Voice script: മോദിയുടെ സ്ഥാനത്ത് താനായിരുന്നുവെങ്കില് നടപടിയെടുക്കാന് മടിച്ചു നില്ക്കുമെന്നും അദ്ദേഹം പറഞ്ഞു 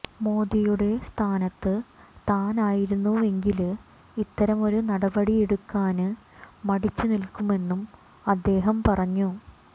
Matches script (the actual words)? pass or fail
fail